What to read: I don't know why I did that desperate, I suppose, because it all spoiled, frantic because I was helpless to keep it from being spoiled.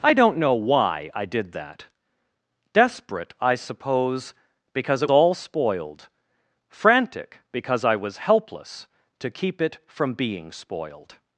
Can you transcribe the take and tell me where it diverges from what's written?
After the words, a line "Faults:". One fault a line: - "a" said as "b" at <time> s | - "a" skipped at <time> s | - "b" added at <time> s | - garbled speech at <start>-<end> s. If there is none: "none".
I don't know why I did that desperate, I suppose, because it all spoiled, frantic because I was helpless to keep it from being spoiled.
Faults:
none